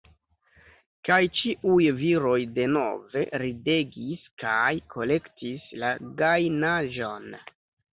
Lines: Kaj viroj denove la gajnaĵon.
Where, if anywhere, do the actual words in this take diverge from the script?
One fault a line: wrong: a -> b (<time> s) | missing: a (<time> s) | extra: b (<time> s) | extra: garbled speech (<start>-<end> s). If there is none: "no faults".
extra: ĉiuj (1.4 s)
extra: ridegis kaj kolektis (3.5 s)